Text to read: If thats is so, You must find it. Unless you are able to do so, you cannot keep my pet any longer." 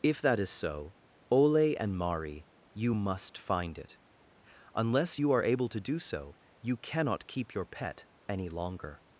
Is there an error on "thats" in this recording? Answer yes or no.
yes